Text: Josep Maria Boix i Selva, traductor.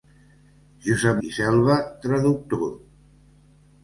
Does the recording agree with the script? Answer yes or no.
no